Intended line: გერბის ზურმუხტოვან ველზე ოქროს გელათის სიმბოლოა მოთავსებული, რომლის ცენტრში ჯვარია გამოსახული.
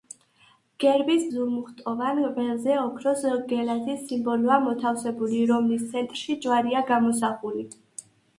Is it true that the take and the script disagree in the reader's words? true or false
false